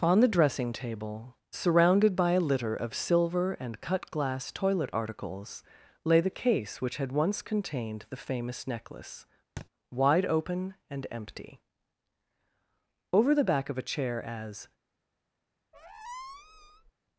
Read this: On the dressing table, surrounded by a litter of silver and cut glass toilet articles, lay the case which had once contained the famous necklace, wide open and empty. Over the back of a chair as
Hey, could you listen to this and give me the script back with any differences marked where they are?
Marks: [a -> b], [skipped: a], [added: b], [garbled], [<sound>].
On the dressing table, surrounded by a litter of silver and cut glass toilet articles, lay the case which had once contained the famous necklace, [thud] wide open and empty. Over the back of a chair as [squeak]